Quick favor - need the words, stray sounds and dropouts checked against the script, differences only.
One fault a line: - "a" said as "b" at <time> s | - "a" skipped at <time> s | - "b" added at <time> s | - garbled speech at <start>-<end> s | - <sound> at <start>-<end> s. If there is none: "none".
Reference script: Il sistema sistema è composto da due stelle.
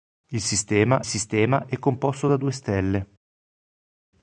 none